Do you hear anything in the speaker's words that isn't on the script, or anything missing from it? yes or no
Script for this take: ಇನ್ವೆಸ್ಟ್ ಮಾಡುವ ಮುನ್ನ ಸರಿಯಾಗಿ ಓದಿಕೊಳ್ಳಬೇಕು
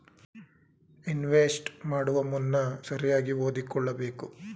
no